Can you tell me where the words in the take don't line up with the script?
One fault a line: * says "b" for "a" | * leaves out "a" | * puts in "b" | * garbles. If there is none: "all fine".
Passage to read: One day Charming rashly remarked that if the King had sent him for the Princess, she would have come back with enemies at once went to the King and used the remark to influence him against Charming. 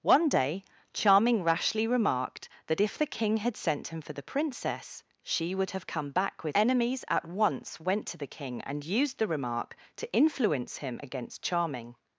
all fine